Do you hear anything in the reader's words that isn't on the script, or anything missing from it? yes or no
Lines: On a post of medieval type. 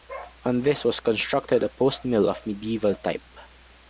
yes